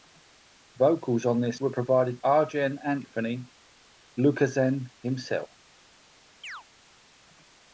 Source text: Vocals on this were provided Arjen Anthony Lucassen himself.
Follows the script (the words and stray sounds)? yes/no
no